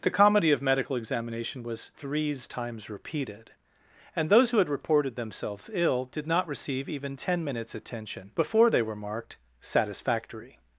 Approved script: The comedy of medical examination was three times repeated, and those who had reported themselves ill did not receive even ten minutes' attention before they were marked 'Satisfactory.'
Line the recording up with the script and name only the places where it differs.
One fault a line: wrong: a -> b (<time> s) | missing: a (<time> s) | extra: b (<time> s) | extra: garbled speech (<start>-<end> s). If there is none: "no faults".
wrong: three -> threes (1.9 s)